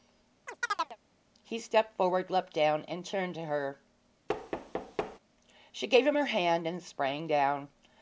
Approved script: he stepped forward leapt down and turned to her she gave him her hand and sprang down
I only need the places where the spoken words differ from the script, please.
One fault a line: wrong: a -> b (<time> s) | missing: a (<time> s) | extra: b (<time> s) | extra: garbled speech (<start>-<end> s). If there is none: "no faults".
no faults